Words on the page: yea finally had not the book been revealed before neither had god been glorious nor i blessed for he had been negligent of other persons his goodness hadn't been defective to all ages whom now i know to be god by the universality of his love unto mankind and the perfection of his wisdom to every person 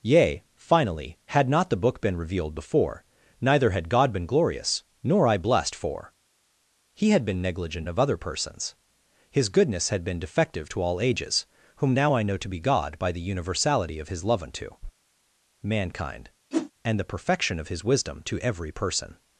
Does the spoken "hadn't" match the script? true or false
false